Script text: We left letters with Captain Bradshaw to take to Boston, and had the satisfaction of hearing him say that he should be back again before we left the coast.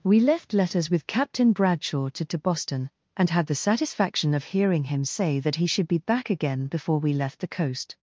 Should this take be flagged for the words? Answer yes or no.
yes